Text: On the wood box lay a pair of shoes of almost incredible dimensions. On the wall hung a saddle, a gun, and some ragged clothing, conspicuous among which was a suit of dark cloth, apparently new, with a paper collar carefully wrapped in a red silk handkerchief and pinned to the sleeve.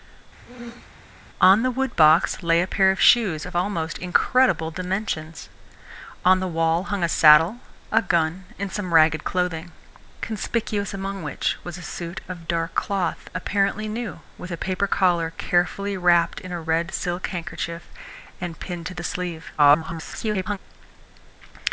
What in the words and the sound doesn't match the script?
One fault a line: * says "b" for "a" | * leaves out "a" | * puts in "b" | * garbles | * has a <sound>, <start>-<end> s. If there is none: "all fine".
* has a throat clearing, 0.5-0.9 s
* garbles